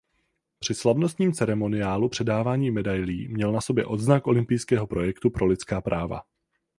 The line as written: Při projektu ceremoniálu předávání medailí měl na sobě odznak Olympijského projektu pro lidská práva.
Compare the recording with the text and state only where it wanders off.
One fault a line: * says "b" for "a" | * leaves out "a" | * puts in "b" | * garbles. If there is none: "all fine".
* says "slavnostním" for "projektu"